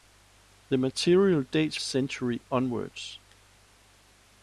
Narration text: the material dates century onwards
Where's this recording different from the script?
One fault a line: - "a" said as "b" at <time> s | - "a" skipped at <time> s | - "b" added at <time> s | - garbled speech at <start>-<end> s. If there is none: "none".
none